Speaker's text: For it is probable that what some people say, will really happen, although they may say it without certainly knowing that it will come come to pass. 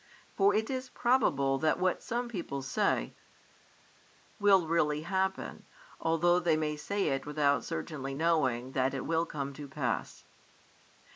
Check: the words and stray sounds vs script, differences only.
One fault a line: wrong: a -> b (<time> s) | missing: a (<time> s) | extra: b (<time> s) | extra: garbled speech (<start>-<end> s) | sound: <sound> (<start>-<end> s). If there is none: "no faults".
missing: come (9.5 s)